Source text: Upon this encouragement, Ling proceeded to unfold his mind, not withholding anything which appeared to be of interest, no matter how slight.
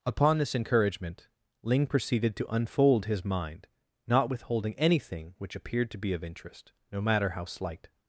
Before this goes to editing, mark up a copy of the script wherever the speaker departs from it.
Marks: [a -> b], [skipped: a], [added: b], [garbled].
Upon this encouragement, Ling proceeded to unfold his mind, not withholding anything which appeared to be of interest, no matter how slight.